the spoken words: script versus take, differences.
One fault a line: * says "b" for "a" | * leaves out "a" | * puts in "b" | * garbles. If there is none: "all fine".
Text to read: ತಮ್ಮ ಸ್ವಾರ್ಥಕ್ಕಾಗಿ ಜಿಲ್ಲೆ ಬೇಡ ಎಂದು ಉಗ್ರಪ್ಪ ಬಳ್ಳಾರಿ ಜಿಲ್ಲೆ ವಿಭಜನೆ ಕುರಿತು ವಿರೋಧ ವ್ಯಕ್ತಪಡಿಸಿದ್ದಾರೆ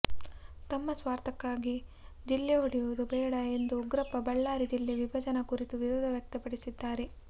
* puts in "ಒಡೆಯುವುದು"